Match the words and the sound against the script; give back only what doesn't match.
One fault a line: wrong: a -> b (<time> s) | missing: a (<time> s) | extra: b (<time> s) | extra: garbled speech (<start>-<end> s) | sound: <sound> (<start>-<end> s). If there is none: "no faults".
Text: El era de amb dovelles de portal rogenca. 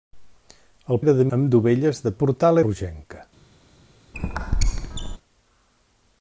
sound: squeak (4.1-5.2 s)